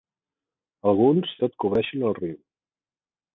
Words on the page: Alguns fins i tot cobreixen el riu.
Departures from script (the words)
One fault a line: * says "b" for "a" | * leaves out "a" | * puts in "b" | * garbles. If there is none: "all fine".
* leaves out "fins"